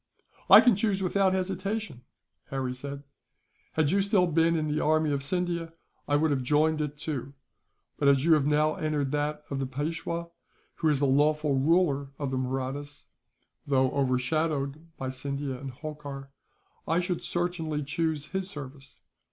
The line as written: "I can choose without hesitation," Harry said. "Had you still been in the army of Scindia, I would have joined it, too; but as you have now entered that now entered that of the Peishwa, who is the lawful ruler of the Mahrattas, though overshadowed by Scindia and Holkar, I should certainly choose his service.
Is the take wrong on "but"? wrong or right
right